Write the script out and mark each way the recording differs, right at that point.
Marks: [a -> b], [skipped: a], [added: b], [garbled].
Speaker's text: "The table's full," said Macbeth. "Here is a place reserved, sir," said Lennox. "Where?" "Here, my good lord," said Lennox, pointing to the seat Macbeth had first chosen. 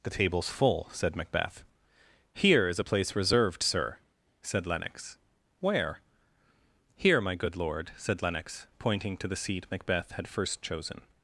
"The table's full," said Macbeth. "Here is a place reserved, sir," said Lennox. "Where?" "Here, my good lord," said Lennox, pointing to the seat Macbeth had first chosen.